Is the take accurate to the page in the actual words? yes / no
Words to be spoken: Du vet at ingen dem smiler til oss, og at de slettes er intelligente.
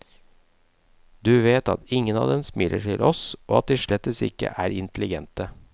no